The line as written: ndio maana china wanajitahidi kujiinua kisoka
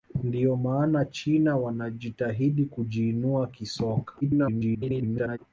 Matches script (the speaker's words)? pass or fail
fail